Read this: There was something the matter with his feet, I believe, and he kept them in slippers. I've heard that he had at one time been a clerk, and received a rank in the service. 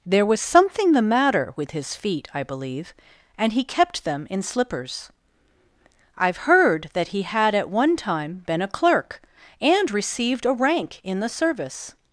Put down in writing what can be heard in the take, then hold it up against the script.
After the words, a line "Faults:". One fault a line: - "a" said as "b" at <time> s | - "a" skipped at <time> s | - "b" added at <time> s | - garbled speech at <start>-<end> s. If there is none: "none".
There was something the matter with his feet, I believe, and he kept them in slippers. I've heard that he had at one time been a clerk, and received a rank in the service.
Faults:
none